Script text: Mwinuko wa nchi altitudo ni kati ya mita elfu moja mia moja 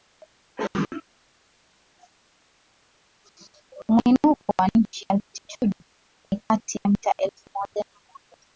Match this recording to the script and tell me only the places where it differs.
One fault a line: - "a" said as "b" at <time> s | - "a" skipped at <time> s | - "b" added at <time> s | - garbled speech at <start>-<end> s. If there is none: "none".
none